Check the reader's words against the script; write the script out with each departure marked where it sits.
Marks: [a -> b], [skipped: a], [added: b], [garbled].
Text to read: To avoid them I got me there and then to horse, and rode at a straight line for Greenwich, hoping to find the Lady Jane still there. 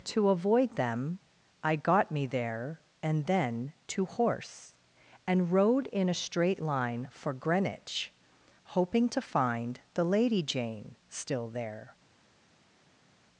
To avoid them I got me there and then to horse, and rode [at -> in] a straight line for Greenwich, hoping to find the Lady Jane still there.